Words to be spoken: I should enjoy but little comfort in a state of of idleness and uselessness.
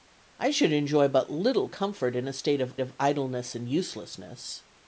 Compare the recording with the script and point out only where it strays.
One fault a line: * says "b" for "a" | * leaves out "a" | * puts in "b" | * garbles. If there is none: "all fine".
all fine